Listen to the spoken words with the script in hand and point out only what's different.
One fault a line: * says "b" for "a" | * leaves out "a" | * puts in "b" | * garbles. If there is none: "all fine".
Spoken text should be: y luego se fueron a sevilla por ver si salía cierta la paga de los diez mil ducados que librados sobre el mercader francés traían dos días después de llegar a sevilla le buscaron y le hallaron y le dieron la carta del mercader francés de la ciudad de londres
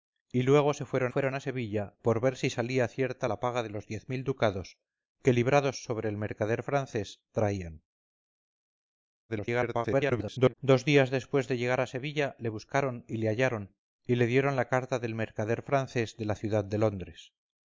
* puts in "fueron"
* garbles